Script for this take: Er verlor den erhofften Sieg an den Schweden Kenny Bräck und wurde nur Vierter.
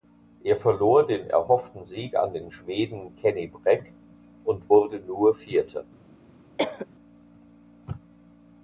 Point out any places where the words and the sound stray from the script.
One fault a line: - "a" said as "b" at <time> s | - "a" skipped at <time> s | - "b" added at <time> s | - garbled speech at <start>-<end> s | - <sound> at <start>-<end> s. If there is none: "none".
- cough at 6.6-6.9 s